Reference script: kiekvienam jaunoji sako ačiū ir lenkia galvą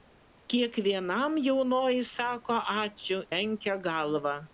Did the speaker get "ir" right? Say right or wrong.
wrong